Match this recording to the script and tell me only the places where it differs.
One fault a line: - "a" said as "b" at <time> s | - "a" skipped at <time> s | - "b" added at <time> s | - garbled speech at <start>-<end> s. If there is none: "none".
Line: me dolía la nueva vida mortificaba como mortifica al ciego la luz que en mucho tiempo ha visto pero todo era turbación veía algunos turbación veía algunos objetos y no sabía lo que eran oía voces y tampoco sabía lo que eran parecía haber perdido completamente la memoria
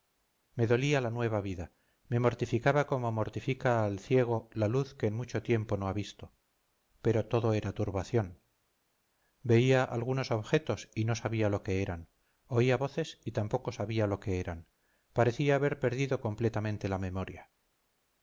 - "me" added at 2.1 s
- "no" added at 5.8 s
- "turbación veía algunos" skipped at 10.3 s